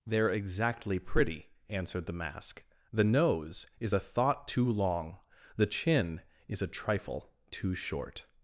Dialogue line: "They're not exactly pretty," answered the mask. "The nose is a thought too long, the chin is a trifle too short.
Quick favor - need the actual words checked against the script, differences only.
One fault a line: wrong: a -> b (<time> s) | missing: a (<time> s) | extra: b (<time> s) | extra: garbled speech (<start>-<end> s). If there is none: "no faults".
missing: not (0.3 s)